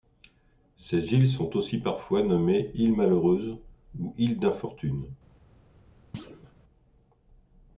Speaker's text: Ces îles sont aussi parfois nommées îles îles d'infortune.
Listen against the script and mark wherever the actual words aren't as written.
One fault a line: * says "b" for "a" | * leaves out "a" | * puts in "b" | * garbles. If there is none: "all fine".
* puts in "malheureuses ou"